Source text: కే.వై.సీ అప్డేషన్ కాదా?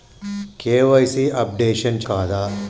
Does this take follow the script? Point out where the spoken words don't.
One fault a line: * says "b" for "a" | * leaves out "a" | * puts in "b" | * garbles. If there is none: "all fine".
all fine